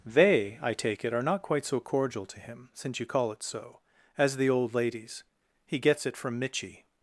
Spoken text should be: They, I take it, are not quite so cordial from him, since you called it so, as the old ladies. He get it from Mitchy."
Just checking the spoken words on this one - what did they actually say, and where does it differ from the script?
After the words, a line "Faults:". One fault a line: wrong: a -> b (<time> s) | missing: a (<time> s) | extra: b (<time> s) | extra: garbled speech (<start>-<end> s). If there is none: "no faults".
They, I take it, are not quite so cordial to him, since you call it so, as the old ladies. He gets it from Mitchy."
Faults:
wrong: from -> to (2.3 s)
wrong: called -> call (3.1 s)
wrong: get -> gets (5.8 s)